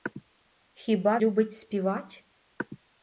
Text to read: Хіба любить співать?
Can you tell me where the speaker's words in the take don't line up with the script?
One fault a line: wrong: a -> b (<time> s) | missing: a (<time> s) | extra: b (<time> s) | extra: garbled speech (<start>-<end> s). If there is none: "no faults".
no faults